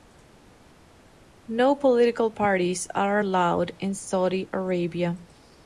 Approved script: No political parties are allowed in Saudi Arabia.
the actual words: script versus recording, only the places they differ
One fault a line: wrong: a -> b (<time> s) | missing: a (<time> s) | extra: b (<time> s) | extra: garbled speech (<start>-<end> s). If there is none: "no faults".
no faults